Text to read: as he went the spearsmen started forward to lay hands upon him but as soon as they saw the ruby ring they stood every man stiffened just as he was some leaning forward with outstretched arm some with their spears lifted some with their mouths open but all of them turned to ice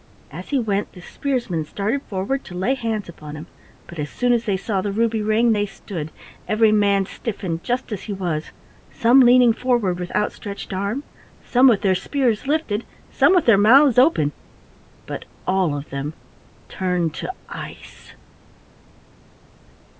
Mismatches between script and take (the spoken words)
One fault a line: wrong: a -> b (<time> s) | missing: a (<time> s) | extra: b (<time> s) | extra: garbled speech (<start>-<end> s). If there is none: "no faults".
no faults